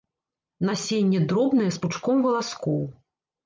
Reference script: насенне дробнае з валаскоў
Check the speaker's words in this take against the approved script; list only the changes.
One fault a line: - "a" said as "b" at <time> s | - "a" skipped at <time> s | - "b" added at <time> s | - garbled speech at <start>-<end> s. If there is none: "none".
- "пучком" added at 1.9 s